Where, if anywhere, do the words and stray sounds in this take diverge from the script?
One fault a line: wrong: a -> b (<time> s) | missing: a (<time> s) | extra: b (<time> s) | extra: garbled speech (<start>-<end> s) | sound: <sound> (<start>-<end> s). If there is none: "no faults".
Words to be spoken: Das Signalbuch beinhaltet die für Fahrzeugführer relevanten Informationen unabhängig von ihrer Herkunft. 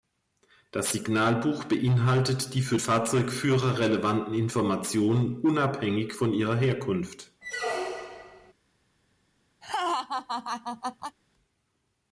sound: squeak (7.4-8.5 s)
sound: laugh (9.6-11.2 s)